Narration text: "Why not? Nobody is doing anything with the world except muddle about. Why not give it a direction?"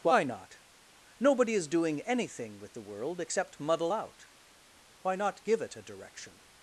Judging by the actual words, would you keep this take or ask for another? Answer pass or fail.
fail